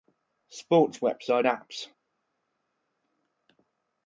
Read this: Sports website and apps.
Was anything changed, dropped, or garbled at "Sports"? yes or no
no